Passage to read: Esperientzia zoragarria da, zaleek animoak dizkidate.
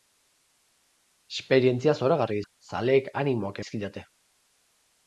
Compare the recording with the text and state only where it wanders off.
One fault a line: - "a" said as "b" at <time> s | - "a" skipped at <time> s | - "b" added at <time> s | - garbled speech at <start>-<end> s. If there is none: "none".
none